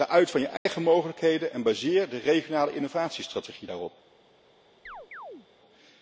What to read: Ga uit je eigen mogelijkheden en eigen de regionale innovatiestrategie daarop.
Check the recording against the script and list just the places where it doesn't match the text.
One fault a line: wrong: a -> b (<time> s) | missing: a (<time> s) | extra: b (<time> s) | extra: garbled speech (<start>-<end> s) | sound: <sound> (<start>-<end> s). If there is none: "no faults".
extra: van (0.3 s)
sound: dropout (0.6-0.7 s)
wrong: eigen -> baseer (1.6 s)
sound: chirp (4.9-5.5 s)